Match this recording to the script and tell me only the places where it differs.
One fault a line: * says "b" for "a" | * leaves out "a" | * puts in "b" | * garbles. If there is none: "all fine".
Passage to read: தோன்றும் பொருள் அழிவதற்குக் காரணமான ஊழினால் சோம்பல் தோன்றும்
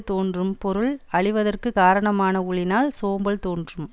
all fine